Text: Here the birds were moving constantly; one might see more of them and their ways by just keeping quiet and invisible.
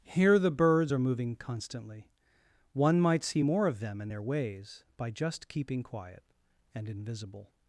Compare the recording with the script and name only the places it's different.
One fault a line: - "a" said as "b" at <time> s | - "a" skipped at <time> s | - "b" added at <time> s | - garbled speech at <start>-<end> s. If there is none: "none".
- "were" said as "are" at 0.9 s